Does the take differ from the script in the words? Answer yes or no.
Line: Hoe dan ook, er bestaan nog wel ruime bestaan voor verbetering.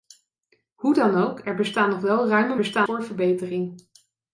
no